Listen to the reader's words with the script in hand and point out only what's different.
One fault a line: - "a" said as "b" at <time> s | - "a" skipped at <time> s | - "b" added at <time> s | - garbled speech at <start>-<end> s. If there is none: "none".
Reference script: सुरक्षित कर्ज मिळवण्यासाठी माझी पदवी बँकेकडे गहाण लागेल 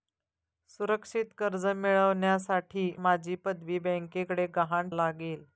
none